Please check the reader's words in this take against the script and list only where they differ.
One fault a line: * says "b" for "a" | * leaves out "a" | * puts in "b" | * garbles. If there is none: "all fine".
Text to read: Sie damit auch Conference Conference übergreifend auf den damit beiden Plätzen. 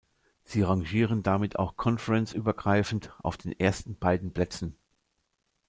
* puts in "rangieren"
* leaves out "Conference"
* says "ersten" for "damit"